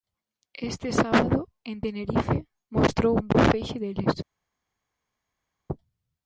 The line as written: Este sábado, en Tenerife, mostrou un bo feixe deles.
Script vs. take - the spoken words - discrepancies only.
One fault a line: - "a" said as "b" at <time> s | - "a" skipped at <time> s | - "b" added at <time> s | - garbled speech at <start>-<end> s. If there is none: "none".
none